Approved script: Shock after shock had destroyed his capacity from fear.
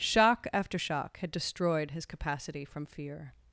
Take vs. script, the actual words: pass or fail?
pass